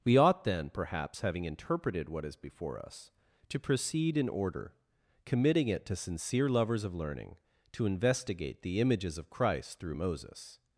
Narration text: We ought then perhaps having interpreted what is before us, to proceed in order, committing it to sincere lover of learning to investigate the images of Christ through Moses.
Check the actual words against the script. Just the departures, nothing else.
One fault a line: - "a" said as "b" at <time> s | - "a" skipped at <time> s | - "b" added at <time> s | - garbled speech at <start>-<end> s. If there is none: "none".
- "lover" said as "lovers" at 6.5 s